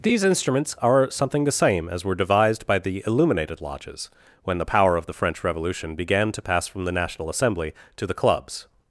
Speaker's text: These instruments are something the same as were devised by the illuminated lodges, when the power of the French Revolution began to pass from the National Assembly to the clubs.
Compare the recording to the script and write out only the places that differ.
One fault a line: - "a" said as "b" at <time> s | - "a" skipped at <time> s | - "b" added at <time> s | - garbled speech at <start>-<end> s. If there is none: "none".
none